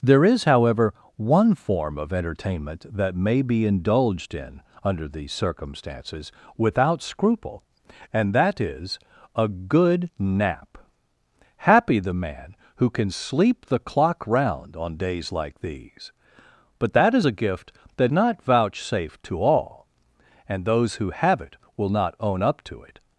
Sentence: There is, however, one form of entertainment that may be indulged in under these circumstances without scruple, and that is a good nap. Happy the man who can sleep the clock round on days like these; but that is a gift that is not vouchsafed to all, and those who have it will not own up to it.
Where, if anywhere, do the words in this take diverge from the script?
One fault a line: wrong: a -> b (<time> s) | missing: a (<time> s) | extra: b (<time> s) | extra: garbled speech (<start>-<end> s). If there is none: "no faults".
missing: is (18.1 s)